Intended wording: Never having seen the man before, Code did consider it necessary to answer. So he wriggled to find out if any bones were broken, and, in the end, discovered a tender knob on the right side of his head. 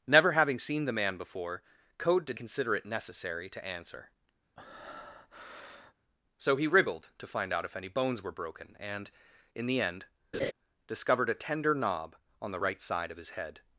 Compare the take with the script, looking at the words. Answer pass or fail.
pass